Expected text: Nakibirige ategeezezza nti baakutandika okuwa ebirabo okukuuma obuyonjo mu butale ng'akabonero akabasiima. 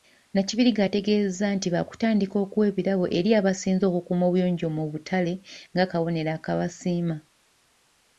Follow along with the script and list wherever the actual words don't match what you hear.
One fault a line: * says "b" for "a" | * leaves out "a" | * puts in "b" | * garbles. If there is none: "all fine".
* puts in "eri abasinze"